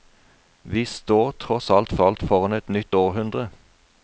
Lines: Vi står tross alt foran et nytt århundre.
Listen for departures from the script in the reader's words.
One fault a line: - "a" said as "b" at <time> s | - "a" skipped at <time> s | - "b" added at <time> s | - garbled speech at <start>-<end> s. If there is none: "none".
- "alt" added at 2.0 s